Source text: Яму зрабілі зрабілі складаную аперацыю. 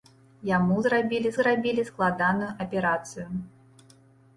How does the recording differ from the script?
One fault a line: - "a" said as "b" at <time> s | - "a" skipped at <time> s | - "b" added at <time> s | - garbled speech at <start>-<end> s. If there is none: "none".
none